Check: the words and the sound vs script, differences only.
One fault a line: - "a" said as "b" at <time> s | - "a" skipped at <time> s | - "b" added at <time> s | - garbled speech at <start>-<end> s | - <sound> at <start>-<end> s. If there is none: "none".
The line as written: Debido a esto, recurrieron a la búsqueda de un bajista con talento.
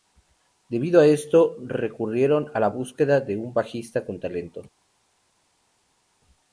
none